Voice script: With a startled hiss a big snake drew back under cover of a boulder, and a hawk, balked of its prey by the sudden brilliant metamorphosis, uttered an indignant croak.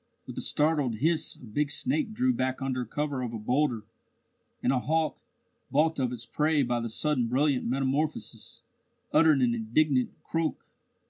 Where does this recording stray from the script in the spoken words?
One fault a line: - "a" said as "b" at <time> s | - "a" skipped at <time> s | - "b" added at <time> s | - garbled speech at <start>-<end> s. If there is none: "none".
none